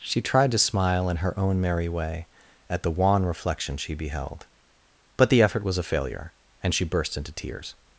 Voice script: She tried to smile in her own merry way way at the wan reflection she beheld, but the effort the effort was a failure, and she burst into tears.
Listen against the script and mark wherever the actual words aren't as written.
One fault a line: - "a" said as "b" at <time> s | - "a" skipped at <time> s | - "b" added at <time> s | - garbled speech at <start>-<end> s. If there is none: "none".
- "way" skipped at 2.3 s
- "the effort" skipped at 5.6 s